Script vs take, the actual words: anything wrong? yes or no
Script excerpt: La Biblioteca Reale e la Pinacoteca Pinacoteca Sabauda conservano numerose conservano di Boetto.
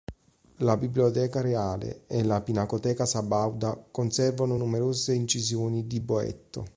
yes